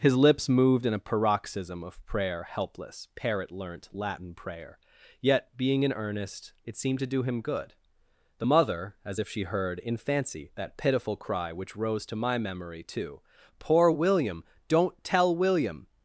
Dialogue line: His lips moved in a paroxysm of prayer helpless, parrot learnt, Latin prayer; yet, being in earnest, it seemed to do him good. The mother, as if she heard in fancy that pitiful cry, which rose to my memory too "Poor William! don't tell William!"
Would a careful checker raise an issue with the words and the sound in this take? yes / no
no